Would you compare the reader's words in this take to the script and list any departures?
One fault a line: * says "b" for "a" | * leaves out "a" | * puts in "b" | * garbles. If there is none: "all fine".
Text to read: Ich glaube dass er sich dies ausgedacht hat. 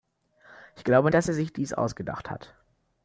all fine